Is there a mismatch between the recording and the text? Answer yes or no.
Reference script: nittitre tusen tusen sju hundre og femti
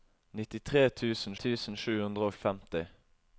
no